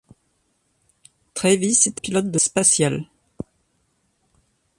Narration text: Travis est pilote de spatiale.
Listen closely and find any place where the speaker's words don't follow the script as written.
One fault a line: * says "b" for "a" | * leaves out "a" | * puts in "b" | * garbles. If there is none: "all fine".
all fine